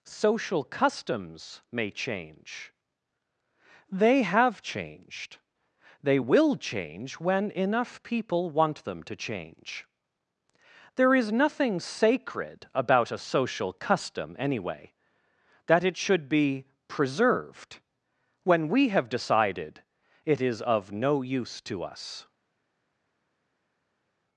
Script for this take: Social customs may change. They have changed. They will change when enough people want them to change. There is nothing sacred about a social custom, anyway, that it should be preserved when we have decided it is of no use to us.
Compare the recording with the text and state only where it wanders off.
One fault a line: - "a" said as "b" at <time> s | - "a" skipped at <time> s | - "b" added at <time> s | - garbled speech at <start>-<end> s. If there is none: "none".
none